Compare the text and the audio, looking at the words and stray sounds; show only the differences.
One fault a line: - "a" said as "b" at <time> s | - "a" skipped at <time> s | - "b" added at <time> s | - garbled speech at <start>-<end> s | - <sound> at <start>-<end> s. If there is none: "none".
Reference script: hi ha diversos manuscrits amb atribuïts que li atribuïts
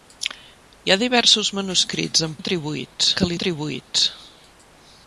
none